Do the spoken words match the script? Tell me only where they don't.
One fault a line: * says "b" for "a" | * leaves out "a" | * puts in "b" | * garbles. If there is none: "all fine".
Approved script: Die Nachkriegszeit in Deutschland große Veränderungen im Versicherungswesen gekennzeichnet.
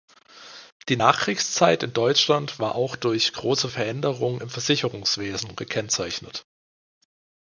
* puts in "war auch durch"